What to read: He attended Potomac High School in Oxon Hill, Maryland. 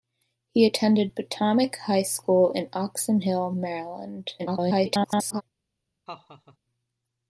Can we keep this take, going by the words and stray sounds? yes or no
no